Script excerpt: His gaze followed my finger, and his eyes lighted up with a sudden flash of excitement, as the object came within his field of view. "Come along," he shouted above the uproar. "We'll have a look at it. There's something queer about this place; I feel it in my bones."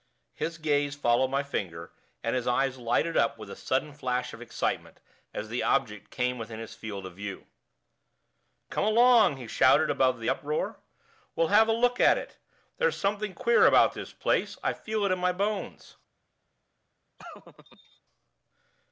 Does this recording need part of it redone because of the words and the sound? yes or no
yes